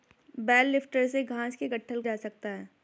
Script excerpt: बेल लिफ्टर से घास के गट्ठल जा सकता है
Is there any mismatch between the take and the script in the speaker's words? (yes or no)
no